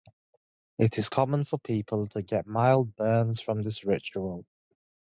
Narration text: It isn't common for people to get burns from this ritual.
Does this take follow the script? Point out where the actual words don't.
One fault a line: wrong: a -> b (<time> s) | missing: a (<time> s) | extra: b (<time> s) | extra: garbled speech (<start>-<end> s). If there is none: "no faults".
wrong: isn't -> is (1.0 s)
extra: mild (2.5 s)